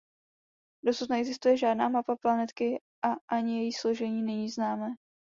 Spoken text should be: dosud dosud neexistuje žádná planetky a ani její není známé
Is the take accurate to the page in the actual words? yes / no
no